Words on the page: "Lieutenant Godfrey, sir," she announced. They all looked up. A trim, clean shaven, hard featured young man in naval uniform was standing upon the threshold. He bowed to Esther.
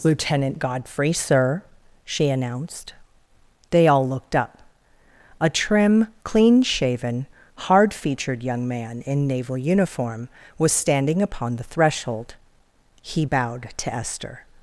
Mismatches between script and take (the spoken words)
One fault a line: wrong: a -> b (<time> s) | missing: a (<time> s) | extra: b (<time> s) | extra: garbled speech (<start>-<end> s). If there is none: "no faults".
no faults